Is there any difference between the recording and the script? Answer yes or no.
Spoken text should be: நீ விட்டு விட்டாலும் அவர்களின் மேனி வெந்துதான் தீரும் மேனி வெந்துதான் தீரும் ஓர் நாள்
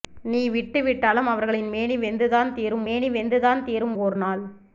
no